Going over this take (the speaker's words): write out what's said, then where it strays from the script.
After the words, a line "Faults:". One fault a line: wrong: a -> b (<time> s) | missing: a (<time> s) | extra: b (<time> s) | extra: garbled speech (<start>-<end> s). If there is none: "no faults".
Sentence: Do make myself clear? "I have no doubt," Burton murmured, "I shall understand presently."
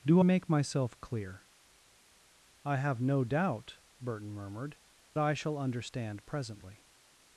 Do make myself clear? "I have no doubt," Burton murmured, "I shall understand presently."
Faults:
no faults